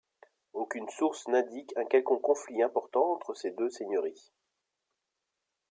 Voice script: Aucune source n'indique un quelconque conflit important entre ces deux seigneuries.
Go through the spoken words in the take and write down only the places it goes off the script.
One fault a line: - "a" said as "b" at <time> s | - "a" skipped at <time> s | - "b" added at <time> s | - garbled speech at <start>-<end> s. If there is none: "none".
none